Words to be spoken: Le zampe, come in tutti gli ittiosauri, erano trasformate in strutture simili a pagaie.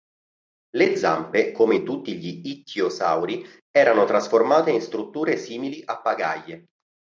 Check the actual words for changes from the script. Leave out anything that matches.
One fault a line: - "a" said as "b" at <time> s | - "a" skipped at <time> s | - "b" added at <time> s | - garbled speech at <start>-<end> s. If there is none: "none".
none